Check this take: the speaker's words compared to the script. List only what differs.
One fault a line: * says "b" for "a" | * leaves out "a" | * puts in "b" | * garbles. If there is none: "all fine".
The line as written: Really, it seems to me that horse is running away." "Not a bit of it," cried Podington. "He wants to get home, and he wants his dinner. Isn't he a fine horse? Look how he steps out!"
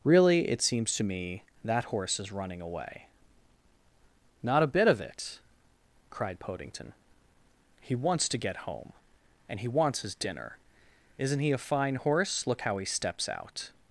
all fine